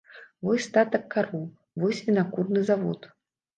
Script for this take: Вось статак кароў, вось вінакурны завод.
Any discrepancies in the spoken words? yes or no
no